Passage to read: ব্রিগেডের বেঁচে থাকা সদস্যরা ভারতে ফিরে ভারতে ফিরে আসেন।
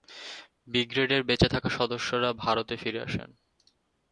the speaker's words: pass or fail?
fail